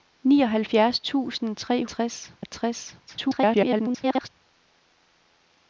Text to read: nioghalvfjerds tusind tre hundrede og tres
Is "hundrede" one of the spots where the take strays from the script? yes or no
yes